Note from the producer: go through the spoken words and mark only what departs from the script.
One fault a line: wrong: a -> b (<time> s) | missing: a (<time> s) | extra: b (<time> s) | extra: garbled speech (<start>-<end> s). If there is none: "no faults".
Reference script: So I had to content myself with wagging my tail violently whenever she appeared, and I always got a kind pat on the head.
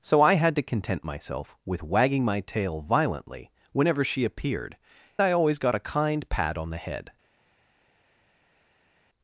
missing: and (4.8 s)